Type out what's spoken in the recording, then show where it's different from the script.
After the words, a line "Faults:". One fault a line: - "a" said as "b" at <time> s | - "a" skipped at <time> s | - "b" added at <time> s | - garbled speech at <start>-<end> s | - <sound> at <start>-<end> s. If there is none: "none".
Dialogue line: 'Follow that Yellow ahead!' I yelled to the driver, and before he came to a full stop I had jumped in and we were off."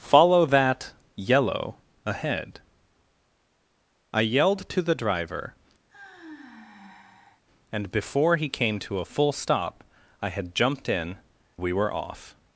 'Follow that Yellow ahead!' I yelled to the driver, and before he came to a full stop I had jumped in we were off."
Faults:
- sigh at 5.9-7.4 s
- "and" skipped at 11.2 s